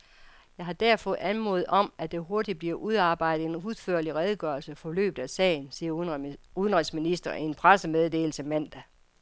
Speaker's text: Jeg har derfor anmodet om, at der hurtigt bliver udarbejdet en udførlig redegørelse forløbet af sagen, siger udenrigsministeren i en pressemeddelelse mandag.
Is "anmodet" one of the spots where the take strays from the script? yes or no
no